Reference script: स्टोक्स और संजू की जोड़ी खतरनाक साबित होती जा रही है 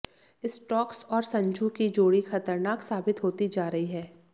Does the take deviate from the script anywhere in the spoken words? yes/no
no